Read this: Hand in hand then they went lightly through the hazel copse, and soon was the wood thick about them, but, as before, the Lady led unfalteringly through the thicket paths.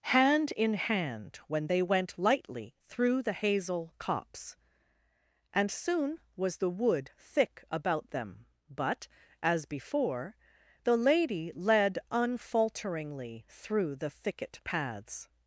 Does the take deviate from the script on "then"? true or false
true